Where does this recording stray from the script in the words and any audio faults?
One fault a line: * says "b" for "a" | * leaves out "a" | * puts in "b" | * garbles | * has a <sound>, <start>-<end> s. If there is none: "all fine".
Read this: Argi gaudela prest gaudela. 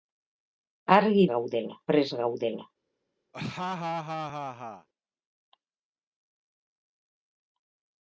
* has a laugh, 3.3-4.9 s